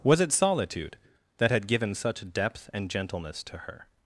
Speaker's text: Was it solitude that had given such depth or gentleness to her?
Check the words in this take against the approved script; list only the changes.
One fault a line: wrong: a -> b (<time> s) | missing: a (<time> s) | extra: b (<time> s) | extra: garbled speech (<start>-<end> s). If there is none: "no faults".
wrong: or -> and (2.7 s)